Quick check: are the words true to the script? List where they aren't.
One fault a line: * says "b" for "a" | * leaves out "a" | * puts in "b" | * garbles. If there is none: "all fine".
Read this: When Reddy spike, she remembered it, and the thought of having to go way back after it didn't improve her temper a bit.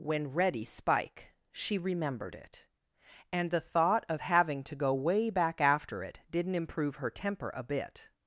all fine